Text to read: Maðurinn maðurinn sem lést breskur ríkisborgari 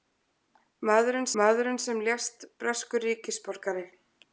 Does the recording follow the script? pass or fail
pass